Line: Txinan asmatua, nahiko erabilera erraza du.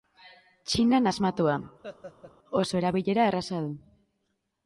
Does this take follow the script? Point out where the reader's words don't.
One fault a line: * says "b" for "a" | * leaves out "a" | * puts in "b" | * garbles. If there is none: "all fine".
* says "oso" for "nahiko"